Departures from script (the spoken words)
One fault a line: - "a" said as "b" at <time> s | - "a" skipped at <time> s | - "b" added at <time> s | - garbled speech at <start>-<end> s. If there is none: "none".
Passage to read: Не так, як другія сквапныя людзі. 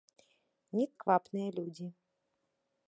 - "так як другія" skipped at 0.9 s